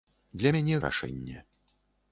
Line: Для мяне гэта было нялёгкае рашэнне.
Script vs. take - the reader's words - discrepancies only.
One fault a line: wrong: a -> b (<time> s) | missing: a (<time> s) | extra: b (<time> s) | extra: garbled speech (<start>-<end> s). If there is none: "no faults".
missing: гэта было нялёгкае (0.8 s)